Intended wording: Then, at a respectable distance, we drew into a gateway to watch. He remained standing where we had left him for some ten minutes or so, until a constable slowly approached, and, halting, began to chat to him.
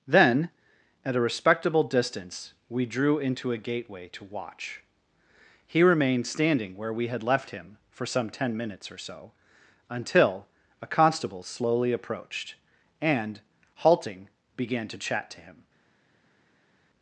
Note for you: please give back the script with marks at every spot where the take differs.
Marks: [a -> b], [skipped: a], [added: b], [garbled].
Then, at a respectable distance, we drew into a gateway to watch. He remained standing where we had left him for some ten minutes or so, until a constable slowly approached, and, halting, began to chat to him.